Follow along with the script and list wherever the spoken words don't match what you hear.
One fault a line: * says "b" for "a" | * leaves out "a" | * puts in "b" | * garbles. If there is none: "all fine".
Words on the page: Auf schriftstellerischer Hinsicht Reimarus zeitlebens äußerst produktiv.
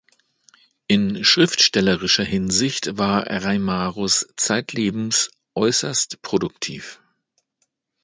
* says "In" for "Auf"
* puts in "war"